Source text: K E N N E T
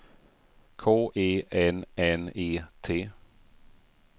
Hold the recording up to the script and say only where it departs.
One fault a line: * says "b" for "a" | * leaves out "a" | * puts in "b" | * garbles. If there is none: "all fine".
all fine